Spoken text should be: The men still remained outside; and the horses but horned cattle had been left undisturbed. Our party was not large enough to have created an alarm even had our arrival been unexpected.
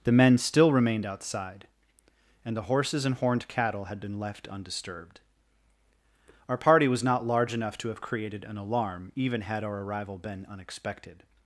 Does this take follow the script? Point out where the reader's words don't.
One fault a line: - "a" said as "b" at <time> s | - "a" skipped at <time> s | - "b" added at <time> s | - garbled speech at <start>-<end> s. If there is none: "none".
- "but" said as "and" at 3.0 s